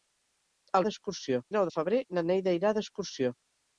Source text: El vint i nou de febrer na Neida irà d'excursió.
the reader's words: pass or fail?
fail